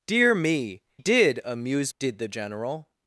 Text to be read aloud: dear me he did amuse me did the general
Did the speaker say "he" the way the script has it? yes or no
no